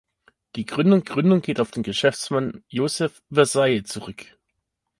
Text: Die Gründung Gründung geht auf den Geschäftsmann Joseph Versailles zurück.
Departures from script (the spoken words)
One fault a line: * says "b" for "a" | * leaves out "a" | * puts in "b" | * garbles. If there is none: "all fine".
all fine